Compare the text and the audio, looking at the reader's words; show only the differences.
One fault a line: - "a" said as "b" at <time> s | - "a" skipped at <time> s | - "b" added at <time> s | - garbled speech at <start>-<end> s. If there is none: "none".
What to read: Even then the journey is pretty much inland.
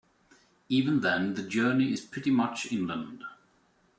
none